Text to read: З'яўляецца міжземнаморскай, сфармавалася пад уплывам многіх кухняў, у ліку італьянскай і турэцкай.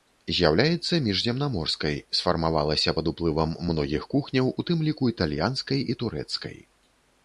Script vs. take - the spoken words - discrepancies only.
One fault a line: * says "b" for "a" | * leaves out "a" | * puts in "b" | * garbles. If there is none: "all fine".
* puts in "тым"